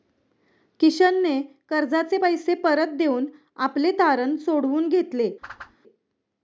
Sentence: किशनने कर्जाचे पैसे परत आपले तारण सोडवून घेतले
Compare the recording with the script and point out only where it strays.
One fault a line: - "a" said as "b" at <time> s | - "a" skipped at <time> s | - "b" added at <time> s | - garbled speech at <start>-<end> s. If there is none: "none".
- "देऊन" added at 3.0 s